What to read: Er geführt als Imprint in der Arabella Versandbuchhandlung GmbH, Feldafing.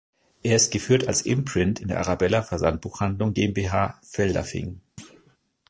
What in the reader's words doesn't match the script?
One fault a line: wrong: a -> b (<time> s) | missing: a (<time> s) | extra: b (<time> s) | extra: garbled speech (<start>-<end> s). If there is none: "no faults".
extra: ist (0.6 s)